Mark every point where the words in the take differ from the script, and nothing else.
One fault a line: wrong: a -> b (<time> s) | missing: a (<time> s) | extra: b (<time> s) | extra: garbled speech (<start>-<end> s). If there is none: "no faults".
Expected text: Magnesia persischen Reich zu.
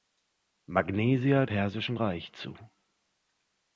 no faults